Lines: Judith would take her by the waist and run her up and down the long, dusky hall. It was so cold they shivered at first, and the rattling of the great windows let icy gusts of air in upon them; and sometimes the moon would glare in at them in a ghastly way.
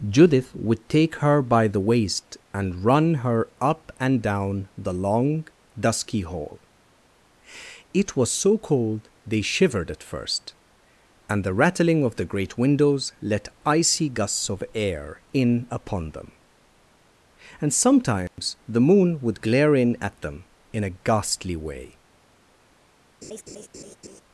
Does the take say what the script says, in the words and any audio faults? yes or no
no